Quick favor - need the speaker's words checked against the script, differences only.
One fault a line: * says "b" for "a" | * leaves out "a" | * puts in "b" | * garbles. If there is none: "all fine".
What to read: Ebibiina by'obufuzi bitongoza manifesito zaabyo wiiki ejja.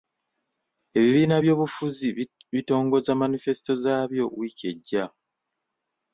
all fine